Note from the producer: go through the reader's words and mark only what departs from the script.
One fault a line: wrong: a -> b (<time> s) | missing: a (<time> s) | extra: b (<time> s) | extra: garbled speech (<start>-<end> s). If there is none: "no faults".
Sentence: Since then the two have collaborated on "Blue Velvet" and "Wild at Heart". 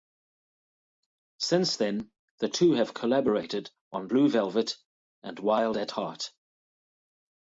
no faults